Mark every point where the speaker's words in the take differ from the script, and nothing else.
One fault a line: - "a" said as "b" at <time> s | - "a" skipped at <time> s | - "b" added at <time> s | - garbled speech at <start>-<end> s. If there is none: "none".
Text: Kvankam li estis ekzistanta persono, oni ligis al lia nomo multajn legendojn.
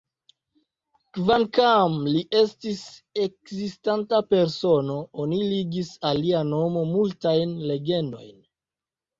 none